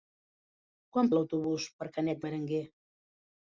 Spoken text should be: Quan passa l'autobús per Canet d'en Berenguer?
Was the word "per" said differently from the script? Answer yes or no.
no